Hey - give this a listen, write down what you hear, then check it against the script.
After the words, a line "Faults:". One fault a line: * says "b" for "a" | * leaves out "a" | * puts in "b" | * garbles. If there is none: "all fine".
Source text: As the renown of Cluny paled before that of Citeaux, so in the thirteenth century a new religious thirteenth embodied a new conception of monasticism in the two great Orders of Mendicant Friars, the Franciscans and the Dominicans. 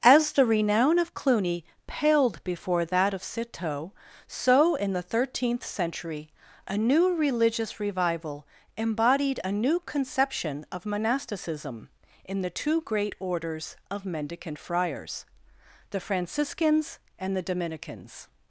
As the renown of Cluny paled before that of Citeaux, so in the thirteenth century a new religious revival embodied a new conception of monasticism in the two great Orders of Mendicant Friars, the Franciscans and the Dominicans.
Faults:
* says "revival" for "thirteenth"